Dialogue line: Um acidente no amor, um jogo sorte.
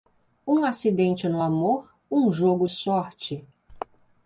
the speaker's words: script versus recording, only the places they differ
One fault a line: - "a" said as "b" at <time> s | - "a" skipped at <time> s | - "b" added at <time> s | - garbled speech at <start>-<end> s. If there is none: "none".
none